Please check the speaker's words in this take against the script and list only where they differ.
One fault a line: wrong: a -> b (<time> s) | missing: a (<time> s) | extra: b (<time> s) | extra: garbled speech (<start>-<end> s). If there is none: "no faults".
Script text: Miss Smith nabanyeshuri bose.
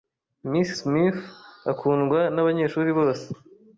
extra: akundwa (1.7 s)